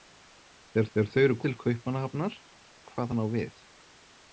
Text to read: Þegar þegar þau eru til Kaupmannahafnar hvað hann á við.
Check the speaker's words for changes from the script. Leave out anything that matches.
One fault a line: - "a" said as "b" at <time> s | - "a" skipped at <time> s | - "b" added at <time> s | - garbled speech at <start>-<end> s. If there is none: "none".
none